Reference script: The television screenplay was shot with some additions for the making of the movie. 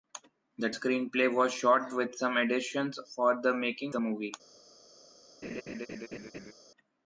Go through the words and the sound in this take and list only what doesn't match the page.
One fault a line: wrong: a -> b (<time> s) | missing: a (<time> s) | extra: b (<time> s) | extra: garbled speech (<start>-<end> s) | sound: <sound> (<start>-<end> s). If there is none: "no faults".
missing: television (0.7 s)
missing: of (3.9 s)
sound: laugh (5.4-6.5 s)